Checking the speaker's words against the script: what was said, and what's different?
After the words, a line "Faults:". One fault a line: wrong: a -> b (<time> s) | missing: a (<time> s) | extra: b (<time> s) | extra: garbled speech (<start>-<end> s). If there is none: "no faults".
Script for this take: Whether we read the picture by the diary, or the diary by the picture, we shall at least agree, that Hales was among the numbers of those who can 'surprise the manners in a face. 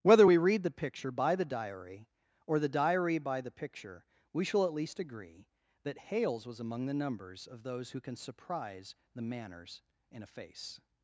Whether we read the picture by the diary, or the diary by the picture, we shall at least agree, that Hales was among the numbers of those who can 'surprise the manners in a face.
Faults:
no faults